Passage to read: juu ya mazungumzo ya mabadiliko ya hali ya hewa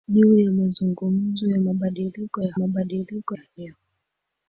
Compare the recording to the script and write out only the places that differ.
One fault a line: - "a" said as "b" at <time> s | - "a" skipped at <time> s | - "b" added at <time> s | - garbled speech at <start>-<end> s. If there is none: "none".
- "hali" said as "mabadiliko" at 2.5 s